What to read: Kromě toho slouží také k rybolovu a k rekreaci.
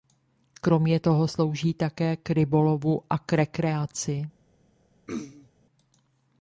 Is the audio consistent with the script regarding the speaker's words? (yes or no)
yes